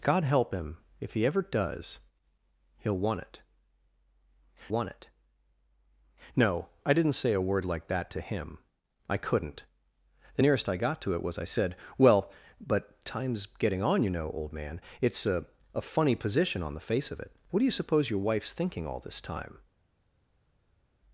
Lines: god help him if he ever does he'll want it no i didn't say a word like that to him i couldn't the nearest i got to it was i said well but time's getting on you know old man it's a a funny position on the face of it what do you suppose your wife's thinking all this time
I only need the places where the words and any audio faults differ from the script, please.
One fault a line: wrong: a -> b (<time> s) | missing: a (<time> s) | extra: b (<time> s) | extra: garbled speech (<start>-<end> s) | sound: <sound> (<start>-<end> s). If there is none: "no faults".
extra: want it (4.7 s)